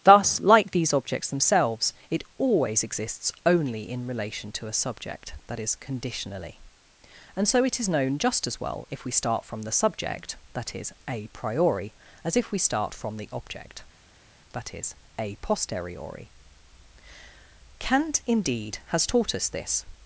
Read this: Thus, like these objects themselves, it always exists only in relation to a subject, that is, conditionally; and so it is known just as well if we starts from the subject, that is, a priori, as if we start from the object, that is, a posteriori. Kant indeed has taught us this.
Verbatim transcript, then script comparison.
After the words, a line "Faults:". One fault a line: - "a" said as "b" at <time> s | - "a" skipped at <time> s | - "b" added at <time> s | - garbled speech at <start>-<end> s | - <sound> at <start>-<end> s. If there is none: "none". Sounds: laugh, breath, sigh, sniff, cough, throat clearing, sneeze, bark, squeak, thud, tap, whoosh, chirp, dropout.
Thus, like these objects themselves, it always exists only in relation to a subject, that is, conditionally; and so it is known just as well if we start from the subject, that is, a priori, as if we start from the object, that is, a posteriori. Kant indeed has taught us this.
Faults:
- "starts" said as "start" at 9.1 s